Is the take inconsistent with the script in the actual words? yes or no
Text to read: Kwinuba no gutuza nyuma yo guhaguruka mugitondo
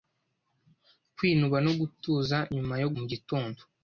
yes